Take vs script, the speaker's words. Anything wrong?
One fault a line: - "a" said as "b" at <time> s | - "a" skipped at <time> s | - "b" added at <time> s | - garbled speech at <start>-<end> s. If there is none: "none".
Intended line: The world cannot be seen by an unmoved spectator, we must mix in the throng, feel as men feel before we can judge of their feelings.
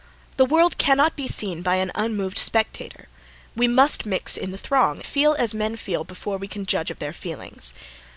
none